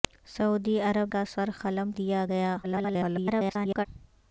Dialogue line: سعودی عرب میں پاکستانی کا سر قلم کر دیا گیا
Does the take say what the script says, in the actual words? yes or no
no